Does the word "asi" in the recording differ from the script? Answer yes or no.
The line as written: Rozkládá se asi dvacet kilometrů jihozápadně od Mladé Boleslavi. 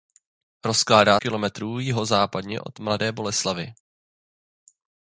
yes